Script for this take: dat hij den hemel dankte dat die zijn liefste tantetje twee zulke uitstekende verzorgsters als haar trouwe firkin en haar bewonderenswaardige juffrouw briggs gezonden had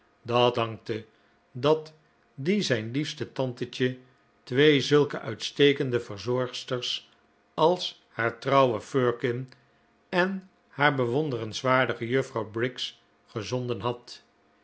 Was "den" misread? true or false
true